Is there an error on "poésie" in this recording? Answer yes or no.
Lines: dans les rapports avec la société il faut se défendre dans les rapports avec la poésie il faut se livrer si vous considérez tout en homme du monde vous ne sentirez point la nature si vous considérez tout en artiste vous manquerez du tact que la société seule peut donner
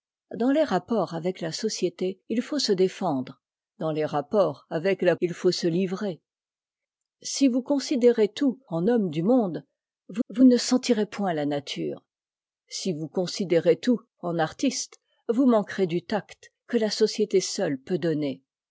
yes